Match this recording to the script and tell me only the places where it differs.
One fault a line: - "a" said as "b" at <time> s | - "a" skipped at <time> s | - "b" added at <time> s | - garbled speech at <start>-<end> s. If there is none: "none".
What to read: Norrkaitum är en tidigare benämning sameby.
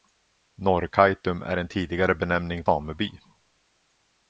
none